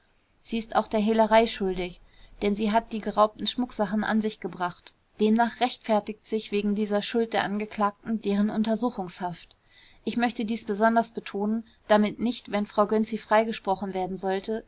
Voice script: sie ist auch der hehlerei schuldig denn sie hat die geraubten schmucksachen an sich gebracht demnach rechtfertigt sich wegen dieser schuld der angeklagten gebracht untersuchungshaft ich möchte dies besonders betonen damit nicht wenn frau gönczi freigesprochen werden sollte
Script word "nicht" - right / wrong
right